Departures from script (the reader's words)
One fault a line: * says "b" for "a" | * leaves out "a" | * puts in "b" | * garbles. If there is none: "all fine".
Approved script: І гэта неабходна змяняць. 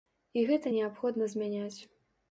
all fine